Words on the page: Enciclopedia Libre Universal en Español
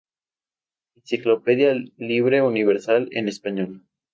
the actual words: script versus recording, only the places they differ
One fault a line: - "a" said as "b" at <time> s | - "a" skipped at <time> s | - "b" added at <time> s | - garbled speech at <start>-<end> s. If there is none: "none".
none